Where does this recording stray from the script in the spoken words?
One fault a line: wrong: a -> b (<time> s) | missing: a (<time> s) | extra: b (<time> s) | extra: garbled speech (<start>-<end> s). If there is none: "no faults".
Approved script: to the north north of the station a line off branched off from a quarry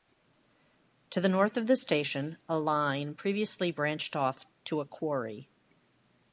missing: north (1.6 s)
wrong: off -> previously (3.1 s)
wrong: from -> to (4.7 s)